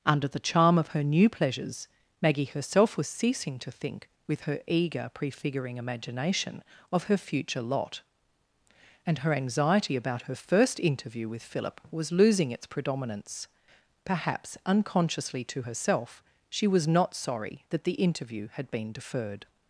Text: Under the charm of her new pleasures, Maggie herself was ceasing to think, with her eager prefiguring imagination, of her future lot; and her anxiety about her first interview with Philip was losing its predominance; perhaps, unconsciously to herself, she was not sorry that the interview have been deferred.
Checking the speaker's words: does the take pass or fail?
fail